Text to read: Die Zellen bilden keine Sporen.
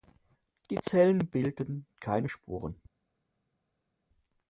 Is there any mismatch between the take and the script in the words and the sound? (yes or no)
no